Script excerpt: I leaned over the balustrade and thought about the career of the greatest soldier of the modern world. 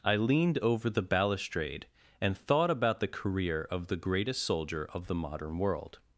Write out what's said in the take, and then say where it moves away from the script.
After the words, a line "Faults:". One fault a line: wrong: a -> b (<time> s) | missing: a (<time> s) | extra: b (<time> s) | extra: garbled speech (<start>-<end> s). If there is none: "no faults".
I leaned over the balustrade and thought about the career of the greatest soldier of the modern world.
Faults:
no faults